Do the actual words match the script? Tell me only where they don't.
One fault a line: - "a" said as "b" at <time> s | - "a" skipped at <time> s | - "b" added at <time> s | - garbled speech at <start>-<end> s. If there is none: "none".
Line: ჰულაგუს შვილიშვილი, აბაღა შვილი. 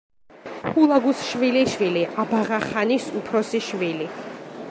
- "ხანის უფროსი" added at 2.6 s